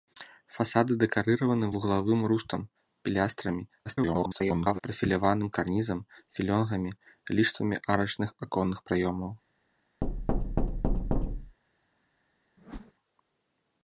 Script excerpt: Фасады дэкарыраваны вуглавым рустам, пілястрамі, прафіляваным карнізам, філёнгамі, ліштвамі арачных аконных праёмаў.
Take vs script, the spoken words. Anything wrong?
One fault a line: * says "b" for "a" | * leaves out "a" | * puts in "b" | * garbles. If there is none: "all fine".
* garbles